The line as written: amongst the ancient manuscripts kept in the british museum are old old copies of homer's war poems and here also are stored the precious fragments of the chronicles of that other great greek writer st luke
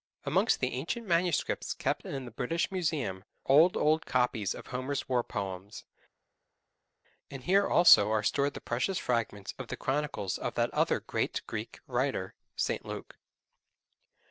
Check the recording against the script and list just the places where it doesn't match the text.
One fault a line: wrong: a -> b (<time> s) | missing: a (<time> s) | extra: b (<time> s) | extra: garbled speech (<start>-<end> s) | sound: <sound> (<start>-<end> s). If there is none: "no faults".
missing: are (3.2 s)